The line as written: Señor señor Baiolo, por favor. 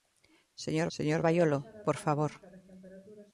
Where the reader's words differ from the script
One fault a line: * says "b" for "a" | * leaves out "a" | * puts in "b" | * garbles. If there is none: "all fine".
all fine